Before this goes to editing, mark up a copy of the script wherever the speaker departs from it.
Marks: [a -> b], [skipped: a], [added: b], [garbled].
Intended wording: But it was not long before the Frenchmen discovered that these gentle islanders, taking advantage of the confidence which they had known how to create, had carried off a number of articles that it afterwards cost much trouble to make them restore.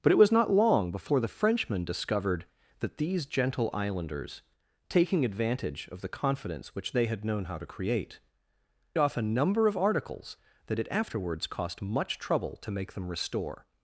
But it was not long before the Frenchmen discovered that these gentle islanders, taking advantage of the confidence which they had known how to create, [skipped: had carried] off a number of articles that it afterwards cost much trouble to make them restore.